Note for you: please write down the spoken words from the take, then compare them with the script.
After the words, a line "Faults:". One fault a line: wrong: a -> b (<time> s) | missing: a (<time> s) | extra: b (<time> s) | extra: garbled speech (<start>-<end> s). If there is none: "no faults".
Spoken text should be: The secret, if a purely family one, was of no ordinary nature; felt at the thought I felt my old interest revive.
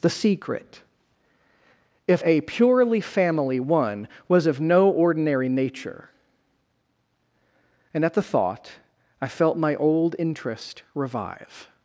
The secret, if a purely family one, was of no ordinary nature; and at the thought I felt my old interest revive.
Faults:
wrong: felt -> and (7.9 s)